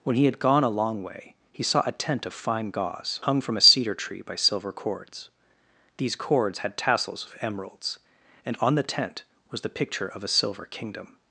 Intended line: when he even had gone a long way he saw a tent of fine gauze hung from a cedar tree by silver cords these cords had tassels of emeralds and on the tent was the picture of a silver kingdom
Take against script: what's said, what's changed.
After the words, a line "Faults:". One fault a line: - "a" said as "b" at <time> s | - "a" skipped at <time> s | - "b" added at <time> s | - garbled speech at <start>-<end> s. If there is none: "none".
when he had gone a long way he saw a tent of fine gauze hung from a cedar tree by silver cords these cords had tassels of emeralds and on the tent was the picture of a silver kingdom
Faults:
- "even" skipped at 0.2 s